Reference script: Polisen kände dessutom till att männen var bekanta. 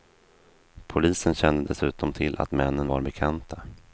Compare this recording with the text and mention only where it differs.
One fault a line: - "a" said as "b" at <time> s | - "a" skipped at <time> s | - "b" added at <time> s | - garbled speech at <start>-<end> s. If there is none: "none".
none